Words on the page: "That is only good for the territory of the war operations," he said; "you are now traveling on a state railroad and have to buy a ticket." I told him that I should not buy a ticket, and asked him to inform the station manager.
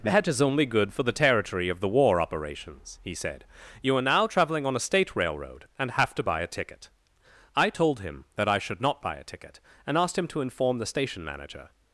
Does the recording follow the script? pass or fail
pass